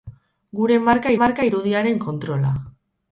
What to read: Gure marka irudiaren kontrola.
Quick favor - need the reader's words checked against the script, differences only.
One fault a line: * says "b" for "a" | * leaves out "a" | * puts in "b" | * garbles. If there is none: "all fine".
* puts in "marka"